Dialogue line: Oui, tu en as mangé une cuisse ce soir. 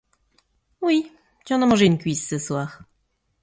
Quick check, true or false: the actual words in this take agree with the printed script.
true